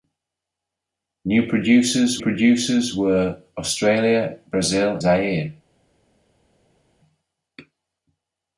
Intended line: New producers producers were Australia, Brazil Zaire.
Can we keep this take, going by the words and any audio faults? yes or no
yes